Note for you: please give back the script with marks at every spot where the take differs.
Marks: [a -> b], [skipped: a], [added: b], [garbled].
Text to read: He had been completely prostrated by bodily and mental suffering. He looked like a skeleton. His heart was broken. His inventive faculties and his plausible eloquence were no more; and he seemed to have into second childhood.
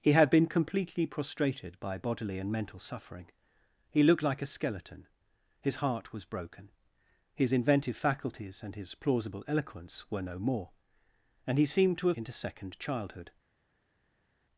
He had been completely prostrated by bodily and mental suffering. He looked like a skeleton. His heart was broken. His inventive faculties and his plausible eloquence were no more; and he seemed to have into second childhood.